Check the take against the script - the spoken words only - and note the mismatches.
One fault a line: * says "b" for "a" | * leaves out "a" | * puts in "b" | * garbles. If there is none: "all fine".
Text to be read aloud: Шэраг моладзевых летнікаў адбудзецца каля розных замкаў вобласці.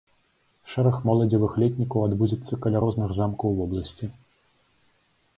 all fine